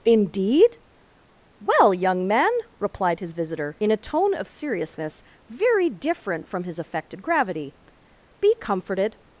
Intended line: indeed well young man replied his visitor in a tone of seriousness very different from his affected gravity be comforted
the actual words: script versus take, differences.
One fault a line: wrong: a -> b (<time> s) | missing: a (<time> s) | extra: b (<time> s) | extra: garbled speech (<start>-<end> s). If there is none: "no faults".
no faults